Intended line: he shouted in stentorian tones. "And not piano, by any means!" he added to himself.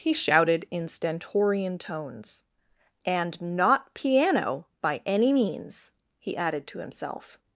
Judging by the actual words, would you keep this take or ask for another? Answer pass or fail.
pass